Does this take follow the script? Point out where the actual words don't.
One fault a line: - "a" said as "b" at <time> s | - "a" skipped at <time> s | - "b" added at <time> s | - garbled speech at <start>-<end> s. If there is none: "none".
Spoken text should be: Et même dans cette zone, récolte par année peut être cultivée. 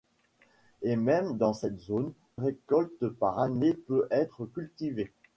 none